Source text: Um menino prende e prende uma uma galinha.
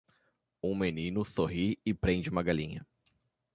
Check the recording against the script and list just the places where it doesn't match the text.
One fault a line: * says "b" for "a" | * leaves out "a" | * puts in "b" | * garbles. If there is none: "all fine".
* says "sorri" for "prende"
* leaves out "uma"